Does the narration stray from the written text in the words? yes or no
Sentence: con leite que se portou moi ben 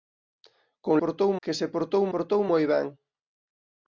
yes